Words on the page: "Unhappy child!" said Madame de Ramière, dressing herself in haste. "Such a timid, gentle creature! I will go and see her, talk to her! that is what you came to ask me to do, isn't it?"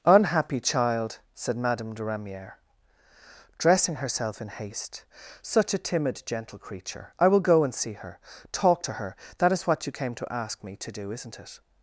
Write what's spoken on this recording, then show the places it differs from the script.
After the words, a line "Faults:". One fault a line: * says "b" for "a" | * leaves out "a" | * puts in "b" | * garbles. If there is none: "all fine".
"Unhappy child!" said Madame de Ramière, dressing herself in haste. "Such a timid, gentle creature! I will go and see her, talk to her! that is what you came to ask me to do, isn't it?"
Faults:
all fine